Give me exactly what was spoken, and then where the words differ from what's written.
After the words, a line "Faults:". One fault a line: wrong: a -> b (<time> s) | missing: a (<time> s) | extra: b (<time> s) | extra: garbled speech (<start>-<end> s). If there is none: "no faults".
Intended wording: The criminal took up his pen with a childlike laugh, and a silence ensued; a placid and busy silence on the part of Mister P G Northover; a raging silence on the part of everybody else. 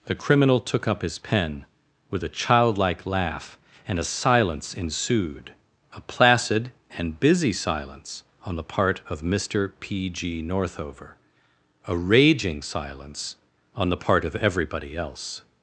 The criminal took up his pen with a childlike laugh, and a silence ensued; a placid and busy silence on the part of Mister P G Northover; a raging silence on the part of everybody else.
Faults:
no faults